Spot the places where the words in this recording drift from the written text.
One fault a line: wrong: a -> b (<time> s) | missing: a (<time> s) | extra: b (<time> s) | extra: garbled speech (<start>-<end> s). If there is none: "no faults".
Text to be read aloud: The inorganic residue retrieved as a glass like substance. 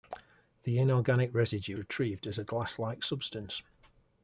no faults